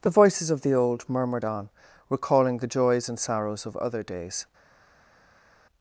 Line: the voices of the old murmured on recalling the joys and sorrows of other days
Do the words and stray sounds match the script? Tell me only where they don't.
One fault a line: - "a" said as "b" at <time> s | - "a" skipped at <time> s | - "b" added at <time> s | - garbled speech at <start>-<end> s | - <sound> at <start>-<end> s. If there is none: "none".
none